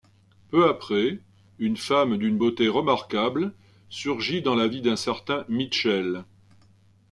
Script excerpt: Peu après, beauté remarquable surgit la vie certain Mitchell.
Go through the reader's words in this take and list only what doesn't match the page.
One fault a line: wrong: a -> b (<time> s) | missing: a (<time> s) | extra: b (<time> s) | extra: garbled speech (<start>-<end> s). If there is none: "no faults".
extra: une femme d'une (1.6 s)
extra: dans (4.4 s)
extra: d'un (4.8 s)